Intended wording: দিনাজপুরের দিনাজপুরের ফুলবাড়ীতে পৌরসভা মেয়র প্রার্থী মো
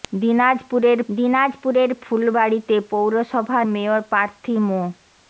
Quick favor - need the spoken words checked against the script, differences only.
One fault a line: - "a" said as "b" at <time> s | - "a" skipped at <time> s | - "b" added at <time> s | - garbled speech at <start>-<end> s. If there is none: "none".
none